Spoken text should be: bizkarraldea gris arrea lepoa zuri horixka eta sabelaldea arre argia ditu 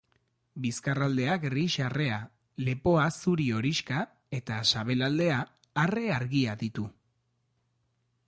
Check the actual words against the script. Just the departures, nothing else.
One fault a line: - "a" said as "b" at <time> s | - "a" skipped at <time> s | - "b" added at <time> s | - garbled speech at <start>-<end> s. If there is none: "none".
none